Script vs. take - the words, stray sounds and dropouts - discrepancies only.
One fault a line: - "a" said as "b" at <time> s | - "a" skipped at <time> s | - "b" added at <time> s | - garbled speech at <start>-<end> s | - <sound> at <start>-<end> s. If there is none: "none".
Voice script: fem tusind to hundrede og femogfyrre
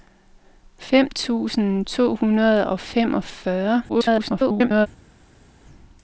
- garbled speech at 3.9-4.9 s